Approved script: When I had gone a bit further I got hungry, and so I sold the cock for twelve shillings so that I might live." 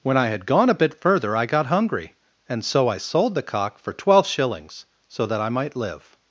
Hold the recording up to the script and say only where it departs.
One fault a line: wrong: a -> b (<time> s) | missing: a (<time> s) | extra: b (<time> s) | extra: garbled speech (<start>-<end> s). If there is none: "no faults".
no faults